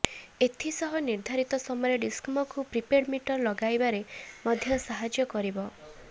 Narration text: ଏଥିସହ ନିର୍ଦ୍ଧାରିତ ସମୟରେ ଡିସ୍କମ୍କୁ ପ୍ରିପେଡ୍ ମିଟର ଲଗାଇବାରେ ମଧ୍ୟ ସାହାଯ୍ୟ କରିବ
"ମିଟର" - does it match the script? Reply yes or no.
yes